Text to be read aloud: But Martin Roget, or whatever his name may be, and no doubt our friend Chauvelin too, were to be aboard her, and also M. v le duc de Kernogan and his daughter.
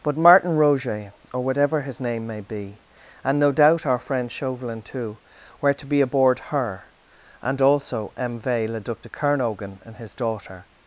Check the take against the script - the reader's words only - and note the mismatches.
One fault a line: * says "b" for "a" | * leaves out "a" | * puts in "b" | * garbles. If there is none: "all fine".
all fine